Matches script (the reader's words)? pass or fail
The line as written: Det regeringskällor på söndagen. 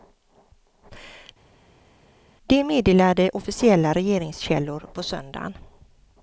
fail